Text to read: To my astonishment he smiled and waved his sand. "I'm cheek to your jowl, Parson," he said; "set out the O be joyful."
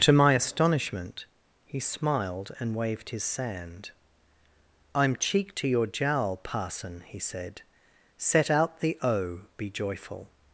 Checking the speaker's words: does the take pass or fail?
pass